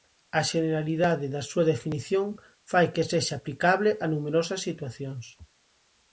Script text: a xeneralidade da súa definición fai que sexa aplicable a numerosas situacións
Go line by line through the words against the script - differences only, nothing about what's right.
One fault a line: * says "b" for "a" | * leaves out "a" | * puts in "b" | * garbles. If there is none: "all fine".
all fine